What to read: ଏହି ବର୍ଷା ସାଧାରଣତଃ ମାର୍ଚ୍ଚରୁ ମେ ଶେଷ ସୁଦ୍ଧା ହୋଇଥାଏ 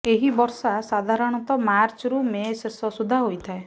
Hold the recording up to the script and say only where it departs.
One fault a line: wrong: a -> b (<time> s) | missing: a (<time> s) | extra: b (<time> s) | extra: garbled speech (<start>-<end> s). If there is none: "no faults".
no faults